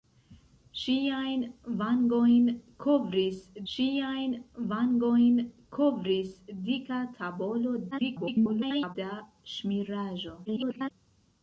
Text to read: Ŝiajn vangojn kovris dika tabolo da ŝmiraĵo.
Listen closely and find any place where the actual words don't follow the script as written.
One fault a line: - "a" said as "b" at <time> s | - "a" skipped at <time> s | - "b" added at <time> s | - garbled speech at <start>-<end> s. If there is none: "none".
- "ŝiajn vangojn kovris" added at 3.7 s
- garbled speech at 7.9-9.0 s
- garbled speech at 10.5-10.9 s